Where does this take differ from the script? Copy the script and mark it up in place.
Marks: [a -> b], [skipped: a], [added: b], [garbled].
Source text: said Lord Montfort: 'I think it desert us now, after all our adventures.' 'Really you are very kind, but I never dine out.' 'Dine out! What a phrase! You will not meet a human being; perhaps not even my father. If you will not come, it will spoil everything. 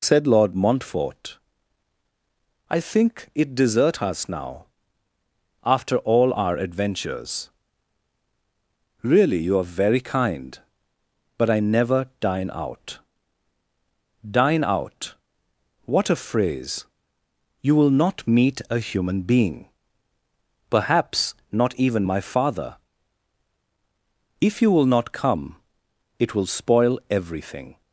said Lord Montfort: 'I think it desert us now, after all our adventures.' 'Really you are very kind, but I never dine out.' 'Dine out! What a phrase! You will not meet a human being; perhaps not even my father. If you will not come, it will spoil everything.